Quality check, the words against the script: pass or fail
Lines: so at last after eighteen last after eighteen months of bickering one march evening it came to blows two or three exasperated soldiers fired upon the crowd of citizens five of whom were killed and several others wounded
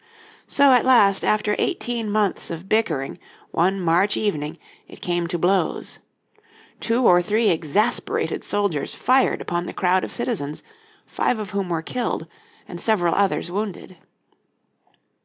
fail